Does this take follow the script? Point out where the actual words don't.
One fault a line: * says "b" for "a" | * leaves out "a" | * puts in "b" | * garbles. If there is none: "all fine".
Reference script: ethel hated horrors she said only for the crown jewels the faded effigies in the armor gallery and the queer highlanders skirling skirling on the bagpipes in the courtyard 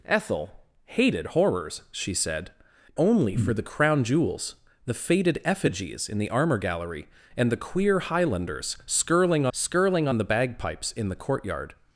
all fine